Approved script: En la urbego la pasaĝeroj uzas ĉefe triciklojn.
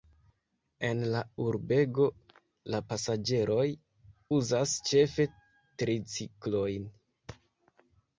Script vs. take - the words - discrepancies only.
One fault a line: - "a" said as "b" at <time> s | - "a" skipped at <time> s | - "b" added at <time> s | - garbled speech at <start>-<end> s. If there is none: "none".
none